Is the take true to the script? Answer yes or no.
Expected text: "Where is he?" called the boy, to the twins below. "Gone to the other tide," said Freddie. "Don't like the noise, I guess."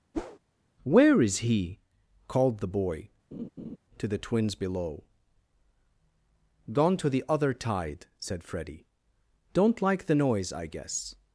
yes